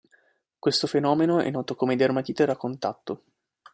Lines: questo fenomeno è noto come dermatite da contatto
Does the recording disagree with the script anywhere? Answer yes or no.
no